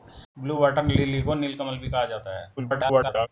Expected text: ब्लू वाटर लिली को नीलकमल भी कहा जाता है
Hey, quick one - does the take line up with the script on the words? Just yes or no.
no